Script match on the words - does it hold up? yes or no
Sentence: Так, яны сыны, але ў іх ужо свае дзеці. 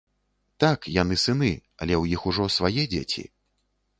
yes